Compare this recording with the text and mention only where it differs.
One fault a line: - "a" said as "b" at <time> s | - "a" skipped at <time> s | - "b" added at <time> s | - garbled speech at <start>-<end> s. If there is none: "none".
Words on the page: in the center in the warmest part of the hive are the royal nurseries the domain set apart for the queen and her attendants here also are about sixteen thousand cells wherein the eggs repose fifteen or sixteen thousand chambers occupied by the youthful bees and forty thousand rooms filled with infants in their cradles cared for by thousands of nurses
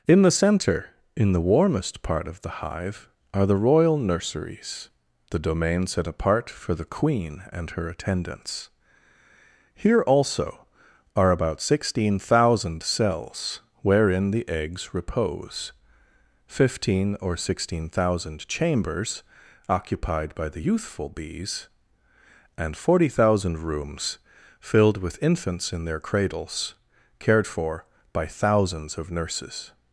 none